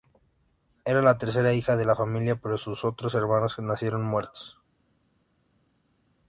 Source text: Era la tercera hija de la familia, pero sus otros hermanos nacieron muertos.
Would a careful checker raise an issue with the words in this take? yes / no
no